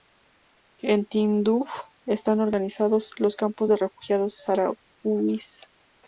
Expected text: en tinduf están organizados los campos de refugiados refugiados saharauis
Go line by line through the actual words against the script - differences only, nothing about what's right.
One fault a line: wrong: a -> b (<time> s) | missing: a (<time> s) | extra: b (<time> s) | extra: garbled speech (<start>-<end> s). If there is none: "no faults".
missing: refugiados (4.4 s)